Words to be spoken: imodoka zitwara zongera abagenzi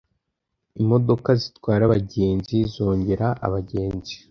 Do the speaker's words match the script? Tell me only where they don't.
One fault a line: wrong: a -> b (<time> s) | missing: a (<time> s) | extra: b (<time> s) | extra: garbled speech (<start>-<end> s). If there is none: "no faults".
extra: abagenzi (1.9 s)